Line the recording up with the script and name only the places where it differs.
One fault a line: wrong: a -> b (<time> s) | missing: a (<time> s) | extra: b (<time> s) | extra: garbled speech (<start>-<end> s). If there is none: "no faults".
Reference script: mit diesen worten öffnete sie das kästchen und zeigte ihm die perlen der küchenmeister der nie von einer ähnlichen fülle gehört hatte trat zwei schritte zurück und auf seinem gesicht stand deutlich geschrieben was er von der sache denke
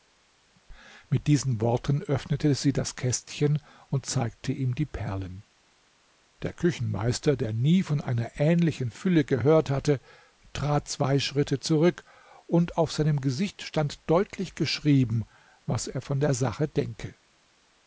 no faults